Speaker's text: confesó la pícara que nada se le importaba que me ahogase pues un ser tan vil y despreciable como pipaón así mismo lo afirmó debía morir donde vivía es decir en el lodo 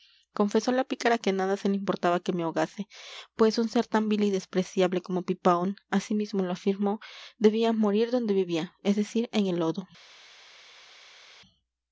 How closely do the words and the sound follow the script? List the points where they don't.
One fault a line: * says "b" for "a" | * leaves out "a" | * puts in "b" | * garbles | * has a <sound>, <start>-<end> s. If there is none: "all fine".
all fine